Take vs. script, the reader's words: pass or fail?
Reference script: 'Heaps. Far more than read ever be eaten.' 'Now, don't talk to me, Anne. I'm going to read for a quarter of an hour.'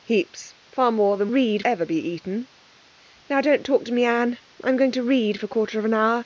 pass